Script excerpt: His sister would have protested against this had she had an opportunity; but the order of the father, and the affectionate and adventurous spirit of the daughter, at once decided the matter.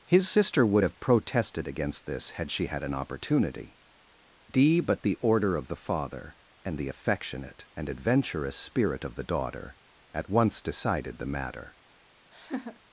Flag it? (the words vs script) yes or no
yes